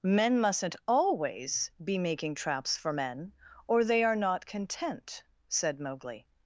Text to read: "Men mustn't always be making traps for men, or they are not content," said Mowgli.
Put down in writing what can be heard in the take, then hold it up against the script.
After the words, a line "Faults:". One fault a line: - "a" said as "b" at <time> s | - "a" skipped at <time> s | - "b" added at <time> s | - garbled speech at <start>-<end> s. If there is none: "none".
"Men mustn't always be making traps for men, or they are not content," said Mowgli.
Faults:
none